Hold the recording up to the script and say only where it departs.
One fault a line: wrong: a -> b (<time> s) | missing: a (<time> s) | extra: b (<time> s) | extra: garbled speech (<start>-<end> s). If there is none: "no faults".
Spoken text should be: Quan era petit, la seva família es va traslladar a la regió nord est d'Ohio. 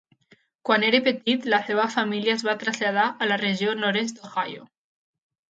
no faults